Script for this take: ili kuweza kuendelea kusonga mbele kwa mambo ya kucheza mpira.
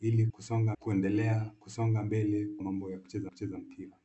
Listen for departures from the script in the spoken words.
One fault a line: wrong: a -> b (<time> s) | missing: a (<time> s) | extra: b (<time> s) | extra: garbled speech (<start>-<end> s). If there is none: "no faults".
wrong: kuweza -> kusonga (0.3 s)
missing: kwa (2.5 s)
extra: kucheza (3.3 s)